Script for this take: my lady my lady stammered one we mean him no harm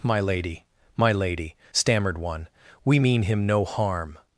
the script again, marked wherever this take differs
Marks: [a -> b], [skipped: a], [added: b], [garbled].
my lady my lady stammered one we mean him no harm